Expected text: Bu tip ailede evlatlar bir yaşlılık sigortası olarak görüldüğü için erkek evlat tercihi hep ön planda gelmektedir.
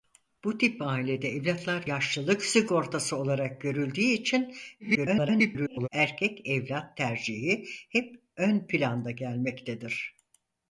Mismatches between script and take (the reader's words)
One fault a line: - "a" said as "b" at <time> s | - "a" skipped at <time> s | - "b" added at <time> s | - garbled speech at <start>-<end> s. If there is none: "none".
- "bir" skipped at 1.9 s
- garbled speech at 4.8-5.9 s